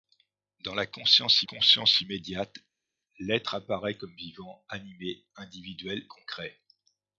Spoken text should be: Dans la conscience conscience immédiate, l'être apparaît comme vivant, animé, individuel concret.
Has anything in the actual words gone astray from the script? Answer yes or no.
no